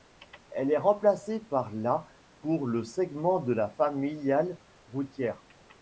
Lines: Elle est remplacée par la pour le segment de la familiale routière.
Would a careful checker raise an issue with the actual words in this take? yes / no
no